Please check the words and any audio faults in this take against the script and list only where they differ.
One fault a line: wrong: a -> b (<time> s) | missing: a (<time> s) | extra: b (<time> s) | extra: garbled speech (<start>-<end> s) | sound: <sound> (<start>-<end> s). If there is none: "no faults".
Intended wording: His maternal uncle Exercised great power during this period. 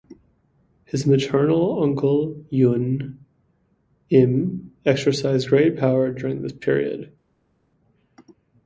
extra: Yun Im (2.5 s)